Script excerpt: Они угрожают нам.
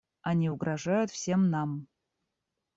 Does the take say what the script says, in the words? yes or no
no